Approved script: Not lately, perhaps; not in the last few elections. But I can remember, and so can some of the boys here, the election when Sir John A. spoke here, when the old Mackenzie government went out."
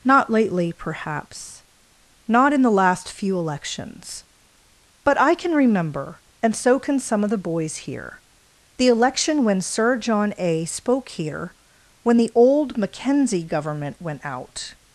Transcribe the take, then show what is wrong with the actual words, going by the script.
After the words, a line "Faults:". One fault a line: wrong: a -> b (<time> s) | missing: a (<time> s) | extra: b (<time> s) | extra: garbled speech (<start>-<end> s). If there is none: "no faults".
Not lately, perhaps; not in the last few elections. But I can remember, and so can some of the boys here, the election when Sir John A. spoke here, when the old Mackenzie government went out."
Faults:
no faults